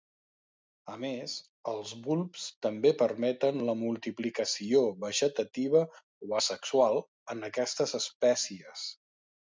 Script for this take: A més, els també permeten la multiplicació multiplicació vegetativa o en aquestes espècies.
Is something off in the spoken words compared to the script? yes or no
yes